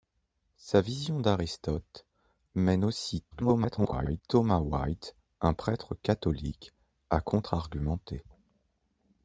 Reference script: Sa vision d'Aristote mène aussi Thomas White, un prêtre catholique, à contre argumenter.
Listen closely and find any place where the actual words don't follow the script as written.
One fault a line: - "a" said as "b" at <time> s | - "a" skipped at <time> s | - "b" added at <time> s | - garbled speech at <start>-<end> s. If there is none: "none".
- garbled speech at 3.3-4.2 s